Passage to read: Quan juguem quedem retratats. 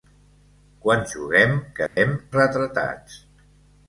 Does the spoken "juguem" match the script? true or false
true